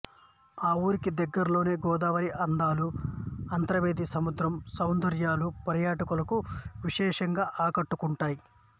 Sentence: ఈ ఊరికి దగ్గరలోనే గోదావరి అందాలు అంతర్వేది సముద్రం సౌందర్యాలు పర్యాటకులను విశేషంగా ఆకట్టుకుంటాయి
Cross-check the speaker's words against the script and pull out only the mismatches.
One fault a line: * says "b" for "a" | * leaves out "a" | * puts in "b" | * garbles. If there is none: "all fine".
all fine